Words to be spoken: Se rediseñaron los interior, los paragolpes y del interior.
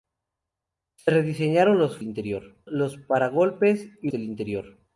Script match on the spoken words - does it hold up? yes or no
yes